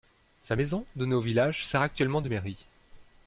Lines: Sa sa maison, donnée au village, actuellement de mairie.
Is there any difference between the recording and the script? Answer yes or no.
yes